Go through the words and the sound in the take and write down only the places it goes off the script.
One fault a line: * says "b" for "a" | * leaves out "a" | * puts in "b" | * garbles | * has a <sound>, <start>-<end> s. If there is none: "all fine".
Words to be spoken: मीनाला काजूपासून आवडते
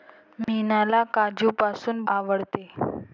* has a dropout, 0.4-0.5 s